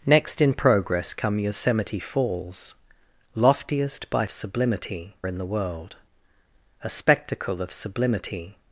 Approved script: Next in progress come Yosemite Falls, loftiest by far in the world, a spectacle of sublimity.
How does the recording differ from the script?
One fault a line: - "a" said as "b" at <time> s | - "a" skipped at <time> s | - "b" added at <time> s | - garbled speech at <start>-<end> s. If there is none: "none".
- "far" said as "sublimity" at 4.3 s